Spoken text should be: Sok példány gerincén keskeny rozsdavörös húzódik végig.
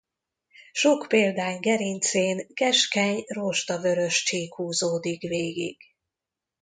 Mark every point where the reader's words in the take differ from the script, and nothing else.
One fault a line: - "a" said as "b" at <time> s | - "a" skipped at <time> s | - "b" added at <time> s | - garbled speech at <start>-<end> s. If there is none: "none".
- "csík" added at 4.2 s